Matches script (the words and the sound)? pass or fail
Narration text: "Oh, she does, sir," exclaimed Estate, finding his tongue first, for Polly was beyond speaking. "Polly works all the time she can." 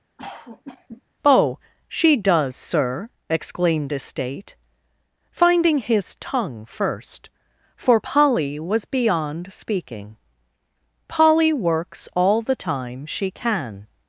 fail